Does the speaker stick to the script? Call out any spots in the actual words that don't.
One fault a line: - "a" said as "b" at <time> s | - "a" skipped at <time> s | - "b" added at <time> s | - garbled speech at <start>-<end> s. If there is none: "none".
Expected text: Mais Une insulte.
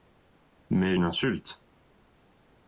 none